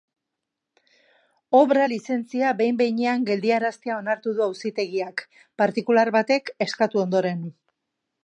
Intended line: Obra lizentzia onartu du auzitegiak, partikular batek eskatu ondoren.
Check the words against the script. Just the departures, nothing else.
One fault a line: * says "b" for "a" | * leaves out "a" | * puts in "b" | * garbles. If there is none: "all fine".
* puts in "behin behinean geldiaraztea"